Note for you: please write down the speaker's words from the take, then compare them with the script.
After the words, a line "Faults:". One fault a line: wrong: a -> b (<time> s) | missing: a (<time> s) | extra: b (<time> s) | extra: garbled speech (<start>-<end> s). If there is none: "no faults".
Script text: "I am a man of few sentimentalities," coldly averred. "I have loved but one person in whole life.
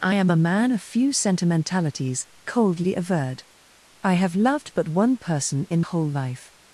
"I am a man of few sentimentalities," coldly averred. "I have loved but one person in whole life.
Faults:
no faults